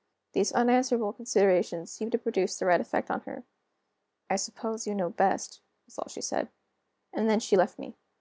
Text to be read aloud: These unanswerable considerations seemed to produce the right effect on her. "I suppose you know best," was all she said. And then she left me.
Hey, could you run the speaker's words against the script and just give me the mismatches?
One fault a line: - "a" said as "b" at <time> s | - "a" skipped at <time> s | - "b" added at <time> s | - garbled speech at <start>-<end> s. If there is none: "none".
none